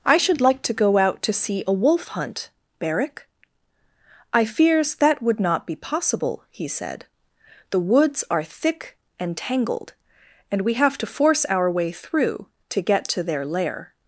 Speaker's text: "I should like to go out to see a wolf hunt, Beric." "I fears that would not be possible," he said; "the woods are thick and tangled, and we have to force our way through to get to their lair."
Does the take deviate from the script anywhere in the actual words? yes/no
no